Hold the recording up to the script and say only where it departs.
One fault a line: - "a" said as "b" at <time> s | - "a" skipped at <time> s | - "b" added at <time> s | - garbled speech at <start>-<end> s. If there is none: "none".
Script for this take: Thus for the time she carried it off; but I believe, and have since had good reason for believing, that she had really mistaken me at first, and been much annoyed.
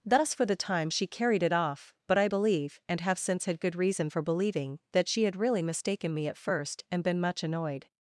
none